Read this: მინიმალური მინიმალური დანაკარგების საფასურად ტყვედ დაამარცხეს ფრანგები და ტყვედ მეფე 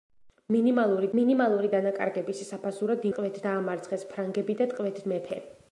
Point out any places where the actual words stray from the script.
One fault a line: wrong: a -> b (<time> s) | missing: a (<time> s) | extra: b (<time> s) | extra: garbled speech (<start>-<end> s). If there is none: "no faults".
no faults